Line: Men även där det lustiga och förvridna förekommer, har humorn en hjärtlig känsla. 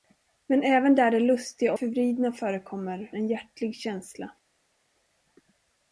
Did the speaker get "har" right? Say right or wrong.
wrong